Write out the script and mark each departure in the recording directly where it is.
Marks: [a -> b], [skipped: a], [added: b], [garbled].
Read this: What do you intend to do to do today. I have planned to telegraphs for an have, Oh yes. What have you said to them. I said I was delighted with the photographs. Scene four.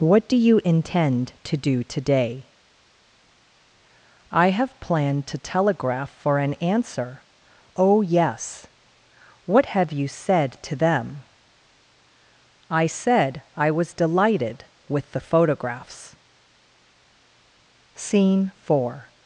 What do you intend to do [skipped: to do] today. I have planned to [telegraphs -> telegraph] for an [have, -> answer] Oh yes. What have you said to them. I said I was delighted with the photographs. Scene four.